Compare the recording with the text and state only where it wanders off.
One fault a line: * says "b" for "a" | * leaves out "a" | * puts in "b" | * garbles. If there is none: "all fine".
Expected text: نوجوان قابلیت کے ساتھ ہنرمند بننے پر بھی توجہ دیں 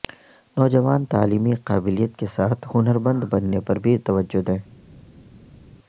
* puts in "تعلیمی"